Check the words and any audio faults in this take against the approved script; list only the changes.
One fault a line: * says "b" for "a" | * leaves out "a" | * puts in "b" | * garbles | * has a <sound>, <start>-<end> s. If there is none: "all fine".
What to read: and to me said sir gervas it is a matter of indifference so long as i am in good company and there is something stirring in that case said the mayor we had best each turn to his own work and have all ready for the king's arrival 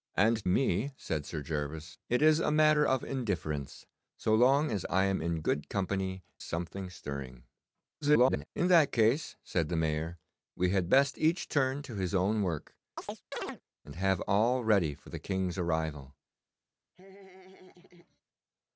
* leaves out "to"
* leaves out "and there is"
* garbles
* has a chirp, 13.0-13.6 s
* has a laugh, 16.9-18.2 s